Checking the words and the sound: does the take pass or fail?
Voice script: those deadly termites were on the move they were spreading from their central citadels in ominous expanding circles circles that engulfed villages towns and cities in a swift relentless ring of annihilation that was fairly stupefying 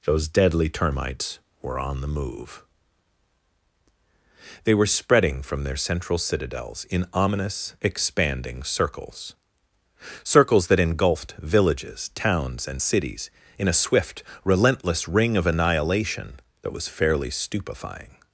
pass